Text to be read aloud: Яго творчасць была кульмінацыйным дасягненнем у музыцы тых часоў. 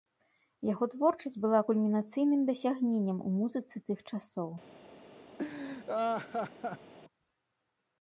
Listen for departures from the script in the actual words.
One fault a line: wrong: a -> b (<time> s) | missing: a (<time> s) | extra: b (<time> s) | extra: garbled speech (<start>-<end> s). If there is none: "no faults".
no faults